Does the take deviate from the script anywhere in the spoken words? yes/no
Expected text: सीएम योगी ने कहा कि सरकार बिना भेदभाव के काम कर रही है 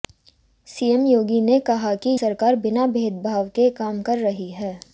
no